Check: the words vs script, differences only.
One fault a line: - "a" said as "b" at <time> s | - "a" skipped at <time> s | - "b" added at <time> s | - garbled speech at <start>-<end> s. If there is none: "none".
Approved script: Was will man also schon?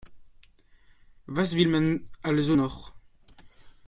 - "schon" said as "noch" at 2.5 s